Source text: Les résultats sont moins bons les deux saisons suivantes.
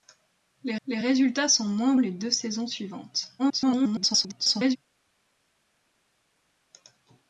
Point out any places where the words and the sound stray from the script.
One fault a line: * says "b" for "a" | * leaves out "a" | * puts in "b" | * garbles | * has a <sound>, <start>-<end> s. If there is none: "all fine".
* puts in "les"
* leaves out "bons"
* garbles